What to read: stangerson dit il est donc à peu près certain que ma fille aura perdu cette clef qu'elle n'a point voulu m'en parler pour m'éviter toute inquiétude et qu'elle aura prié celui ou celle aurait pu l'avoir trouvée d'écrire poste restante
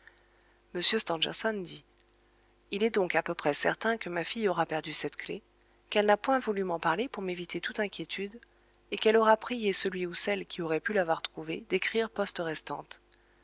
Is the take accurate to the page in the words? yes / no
no